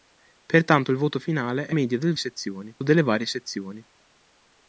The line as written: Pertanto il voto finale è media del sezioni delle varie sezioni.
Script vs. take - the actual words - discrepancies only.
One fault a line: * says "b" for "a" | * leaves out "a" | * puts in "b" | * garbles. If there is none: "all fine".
all fine